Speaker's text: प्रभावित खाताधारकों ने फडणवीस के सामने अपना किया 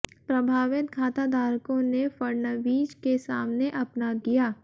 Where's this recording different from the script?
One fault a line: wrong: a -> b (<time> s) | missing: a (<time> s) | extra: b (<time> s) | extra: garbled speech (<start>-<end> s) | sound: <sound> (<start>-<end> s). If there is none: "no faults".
no faults